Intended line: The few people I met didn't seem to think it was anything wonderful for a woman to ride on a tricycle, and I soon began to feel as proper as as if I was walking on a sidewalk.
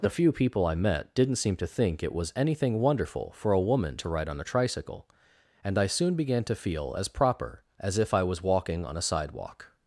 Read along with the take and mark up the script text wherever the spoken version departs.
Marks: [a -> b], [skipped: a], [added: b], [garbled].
The few people I met didn't seem to think it was anything wonderful for a woman to ride on a tricycle, and I soon began to feel as proper as [skipped: as] if I was walking on a sidewalk.